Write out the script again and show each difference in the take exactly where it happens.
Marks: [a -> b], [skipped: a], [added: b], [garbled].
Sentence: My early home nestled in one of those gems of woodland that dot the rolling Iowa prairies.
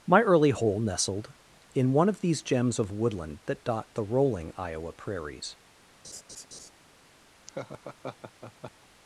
My early [home -> hole] nestled in one of [those -> these] gems of woodland that dot the rolling Iowa prairies.